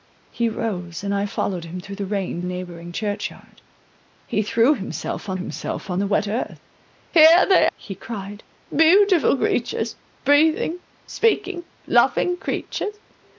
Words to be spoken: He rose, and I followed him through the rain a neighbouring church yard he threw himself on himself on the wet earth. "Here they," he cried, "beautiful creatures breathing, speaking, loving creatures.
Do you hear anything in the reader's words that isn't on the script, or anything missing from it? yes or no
no